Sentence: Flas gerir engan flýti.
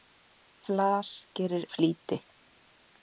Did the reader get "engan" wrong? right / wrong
wrong